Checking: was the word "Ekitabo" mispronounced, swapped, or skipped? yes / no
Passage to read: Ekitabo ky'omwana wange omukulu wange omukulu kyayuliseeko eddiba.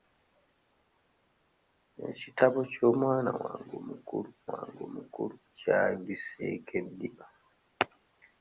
no